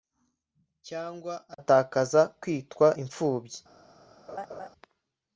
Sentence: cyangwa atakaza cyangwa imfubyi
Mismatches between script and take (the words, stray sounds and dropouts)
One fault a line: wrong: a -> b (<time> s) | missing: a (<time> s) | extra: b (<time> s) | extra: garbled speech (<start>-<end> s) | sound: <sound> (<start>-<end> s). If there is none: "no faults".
wrong: cyangwa -> kwitwa (2.4 s)
sound: laugh (4.3-4.7 s)